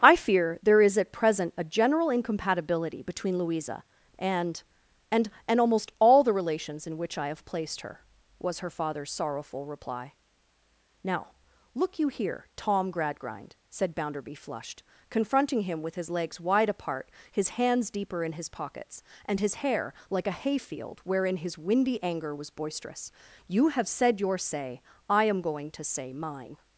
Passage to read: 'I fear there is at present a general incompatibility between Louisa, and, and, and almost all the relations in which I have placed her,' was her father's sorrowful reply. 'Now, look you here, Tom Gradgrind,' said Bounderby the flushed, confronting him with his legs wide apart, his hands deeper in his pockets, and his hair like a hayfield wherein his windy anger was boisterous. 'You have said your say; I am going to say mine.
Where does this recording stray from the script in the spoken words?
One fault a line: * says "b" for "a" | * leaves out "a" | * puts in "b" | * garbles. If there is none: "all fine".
* leaves out "the"